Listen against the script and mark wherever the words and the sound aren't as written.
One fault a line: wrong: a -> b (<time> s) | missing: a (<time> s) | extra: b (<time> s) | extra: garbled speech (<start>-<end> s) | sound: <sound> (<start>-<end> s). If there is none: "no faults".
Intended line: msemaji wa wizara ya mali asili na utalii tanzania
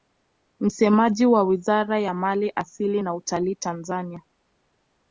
no faults